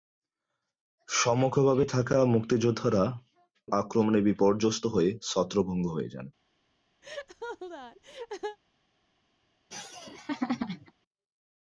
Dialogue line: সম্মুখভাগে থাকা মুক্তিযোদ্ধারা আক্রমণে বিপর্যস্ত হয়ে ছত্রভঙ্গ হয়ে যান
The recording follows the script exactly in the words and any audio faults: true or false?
false